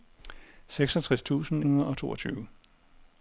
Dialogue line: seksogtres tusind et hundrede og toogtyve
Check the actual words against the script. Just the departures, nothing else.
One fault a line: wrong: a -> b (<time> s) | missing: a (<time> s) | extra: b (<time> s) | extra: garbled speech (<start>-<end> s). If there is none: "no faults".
missing: et (1.6 s)